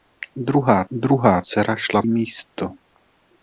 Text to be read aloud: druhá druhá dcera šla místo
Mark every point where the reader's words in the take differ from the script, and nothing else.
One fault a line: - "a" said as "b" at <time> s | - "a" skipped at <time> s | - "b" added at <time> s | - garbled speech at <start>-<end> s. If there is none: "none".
none